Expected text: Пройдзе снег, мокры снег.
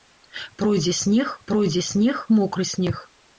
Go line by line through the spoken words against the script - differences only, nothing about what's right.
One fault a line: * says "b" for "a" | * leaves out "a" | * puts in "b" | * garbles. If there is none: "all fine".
* puts in "пройдзе снег"